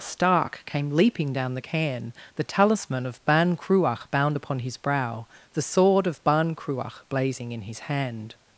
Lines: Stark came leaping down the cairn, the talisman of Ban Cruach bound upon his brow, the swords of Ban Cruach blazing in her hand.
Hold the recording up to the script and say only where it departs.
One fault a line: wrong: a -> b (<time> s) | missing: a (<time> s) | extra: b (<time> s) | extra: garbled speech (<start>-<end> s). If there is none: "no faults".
wrong: swords -> sword (5.6 s)
wrong: her -> his (7.6 s)